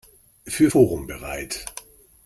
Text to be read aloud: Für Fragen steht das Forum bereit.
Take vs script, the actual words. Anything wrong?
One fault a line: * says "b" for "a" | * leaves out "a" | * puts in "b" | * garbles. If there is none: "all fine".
* leaves out "Fragen steht das"